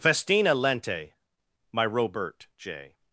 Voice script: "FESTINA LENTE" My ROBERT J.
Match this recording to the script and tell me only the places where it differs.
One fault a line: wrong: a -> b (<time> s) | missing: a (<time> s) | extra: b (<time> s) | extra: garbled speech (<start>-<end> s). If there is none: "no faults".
no faults